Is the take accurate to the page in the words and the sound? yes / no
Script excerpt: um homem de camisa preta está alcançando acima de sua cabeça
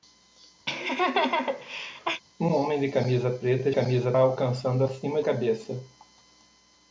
no